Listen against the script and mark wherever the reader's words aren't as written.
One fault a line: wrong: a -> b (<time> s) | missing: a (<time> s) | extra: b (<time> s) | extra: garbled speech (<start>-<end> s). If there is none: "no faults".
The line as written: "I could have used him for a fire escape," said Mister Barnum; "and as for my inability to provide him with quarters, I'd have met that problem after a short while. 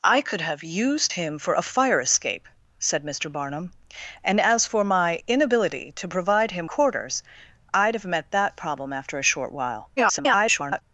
missing: with (6.7 s)
extra: garbled speech (10.0-10.8 s)